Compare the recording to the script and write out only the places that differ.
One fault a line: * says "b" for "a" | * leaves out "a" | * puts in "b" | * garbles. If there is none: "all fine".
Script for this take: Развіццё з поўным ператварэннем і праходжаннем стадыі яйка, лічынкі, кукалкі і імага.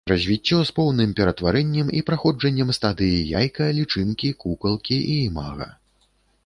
all fine